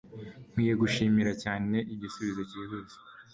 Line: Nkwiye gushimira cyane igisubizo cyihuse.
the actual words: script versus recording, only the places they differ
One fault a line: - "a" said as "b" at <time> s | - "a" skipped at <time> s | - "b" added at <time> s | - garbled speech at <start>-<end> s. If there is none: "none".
none